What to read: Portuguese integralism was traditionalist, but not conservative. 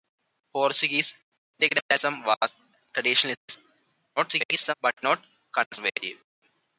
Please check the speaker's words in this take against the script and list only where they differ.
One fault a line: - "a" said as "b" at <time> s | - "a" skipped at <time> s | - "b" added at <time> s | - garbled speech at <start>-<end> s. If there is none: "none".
- garbled speech at 4.2-4.7 s